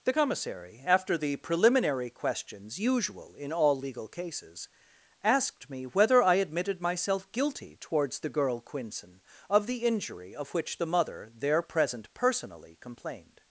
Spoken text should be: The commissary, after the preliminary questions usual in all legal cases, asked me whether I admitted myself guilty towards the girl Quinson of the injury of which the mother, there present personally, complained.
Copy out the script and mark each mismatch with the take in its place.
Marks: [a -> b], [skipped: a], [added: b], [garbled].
The commissary, after the preliminary questions usual in all legal cases, asked me whether I admitted myself guilty towards the girl Quinson of the injury of which the mother, there present personally, complained.